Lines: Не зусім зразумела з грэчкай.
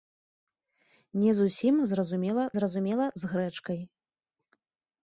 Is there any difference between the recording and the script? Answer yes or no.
yes